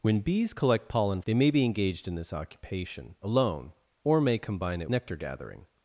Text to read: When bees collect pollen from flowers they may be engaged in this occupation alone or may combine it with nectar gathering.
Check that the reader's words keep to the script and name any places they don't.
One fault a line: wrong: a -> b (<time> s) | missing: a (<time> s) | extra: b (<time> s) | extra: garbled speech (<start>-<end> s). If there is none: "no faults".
missing: from flowers (1.2 s)
missing: with (4.9 s)